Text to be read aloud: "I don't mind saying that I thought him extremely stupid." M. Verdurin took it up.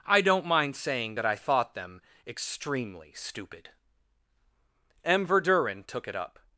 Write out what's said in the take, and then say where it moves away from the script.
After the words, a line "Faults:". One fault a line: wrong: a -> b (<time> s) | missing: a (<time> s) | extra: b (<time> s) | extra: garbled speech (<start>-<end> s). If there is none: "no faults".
"I don't mind saying that I thought them extremely stupid." M. Verdurin took it up.
Faults:
wrong: him -> them (1.7 s)